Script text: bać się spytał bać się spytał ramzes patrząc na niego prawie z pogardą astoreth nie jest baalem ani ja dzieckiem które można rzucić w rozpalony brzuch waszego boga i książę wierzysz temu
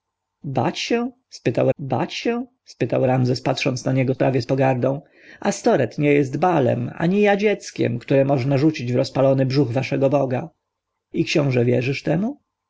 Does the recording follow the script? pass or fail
pass